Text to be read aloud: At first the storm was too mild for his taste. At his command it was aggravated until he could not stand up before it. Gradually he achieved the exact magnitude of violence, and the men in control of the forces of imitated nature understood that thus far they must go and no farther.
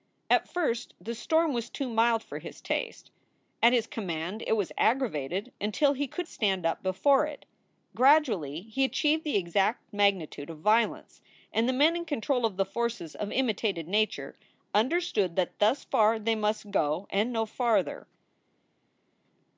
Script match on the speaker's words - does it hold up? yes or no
no